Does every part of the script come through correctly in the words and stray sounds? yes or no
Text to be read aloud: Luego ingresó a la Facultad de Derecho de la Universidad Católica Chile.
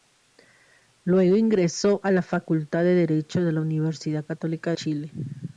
yes